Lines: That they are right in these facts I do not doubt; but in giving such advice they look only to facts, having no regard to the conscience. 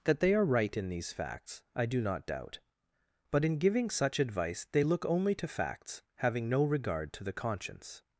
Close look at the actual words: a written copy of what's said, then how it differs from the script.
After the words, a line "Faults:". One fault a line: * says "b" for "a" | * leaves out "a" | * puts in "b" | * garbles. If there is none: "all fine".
That they are right in these facts I do not doubt; but in giving such advice they look only to facts, having no regard to the conscience.
Faults:
all fine